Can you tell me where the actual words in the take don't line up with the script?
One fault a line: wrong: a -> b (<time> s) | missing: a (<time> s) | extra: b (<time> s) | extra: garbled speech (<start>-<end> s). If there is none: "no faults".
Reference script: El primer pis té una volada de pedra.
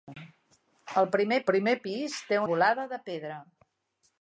extra: primer (1.5 s)
missing: una (2.4 s)